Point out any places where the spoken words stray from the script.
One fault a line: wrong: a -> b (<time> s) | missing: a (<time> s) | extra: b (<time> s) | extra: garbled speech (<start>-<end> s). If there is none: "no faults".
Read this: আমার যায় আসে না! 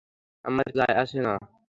no faults